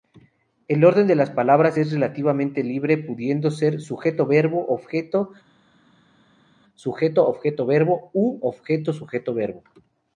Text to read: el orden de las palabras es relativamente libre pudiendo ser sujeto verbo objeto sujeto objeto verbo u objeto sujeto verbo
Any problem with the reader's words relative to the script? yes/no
no